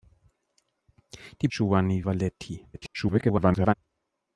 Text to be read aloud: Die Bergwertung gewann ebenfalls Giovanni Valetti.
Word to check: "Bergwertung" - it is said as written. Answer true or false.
false